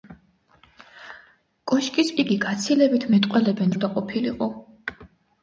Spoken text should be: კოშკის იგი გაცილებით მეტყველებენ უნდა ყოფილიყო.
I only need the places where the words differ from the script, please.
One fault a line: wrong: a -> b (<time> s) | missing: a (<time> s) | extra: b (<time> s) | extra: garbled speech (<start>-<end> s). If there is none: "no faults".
no faults